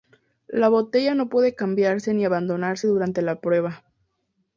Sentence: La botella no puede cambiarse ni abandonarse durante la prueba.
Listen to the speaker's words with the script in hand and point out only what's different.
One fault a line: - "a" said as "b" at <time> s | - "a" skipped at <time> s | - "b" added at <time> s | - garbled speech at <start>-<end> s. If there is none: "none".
none